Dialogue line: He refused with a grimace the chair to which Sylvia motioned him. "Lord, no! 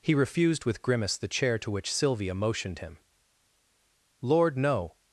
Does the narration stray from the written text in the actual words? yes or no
yes